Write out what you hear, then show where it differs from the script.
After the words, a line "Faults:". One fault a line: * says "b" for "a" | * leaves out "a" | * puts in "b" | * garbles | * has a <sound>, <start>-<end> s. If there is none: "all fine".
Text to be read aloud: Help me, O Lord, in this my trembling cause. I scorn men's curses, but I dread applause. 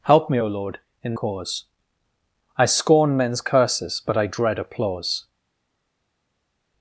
Help me, O Lord, in cause. I scorn men's curses, but I dread applause.
Faults:
* leaves out "this my trembling"